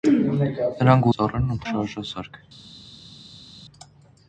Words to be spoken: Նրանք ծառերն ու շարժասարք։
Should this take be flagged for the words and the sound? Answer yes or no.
no